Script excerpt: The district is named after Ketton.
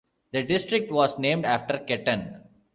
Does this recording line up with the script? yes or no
no